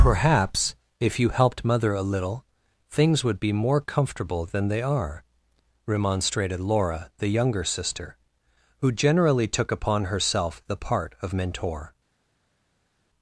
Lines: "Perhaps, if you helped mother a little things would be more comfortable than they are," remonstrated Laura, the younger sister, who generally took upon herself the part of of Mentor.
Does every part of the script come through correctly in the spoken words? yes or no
no